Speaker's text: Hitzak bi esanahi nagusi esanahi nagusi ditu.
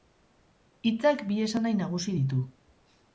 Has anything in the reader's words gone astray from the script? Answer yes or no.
yes